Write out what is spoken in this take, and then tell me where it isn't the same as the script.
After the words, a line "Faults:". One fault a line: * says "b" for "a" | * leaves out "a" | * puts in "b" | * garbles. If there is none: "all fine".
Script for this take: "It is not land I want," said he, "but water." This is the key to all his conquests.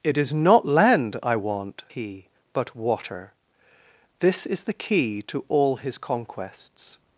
"It is not land I want," he, "but water." This is the key to all his conquests.
Faults:
* leaves out "said"